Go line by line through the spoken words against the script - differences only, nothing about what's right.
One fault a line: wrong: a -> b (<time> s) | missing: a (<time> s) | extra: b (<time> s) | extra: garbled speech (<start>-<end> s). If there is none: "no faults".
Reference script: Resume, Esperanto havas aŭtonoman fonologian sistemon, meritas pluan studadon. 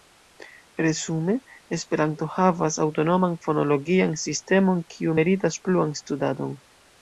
extra: kiu (5.0 s)